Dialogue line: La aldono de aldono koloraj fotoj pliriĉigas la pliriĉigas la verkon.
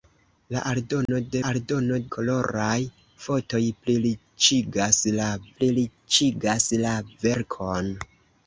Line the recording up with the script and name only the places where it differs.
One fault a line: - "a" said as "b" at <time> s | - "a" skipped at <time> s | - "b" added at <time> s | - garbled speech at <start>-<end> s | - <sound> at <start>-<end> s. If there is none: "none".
- dropout at 1.1-1.1 s